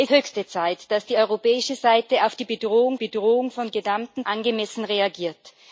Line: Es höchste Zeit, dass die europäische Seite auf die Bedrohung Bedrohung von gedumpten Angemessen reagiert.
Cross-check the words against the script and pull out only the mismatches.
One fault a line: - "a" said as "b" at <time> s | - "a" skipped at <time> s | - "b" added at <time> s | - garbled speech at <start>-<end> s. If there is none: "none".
none